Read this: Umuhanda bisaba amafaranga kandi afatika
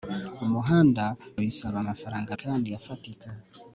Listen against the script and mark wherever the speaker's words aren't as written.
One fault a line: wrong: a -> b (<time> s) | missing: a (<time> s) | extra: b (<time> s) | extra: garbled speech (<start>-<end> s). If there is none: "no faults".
no faults